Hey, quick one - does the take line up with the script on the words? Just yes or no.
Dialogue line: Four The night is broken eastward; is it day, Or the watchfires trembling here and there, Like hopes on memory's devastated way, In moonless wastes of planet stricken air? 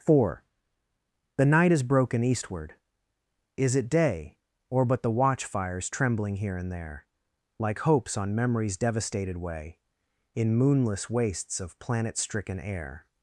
no